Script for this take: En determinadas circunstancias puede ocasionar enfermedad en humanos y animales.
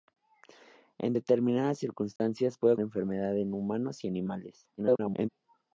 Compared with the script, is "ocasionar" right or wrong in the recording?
wrong